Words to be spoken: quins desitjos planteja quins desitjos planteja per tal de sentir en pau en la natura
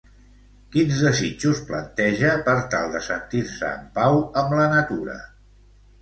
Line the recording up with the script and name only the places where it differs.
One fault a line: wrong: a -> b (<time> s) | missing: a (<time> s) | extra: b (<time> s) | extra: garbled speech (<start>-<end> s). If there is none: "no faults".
missing: quins desitjos planteja (2.3 s)
extra: se (3.5 s)
wrong: en -> amb (4.4 s)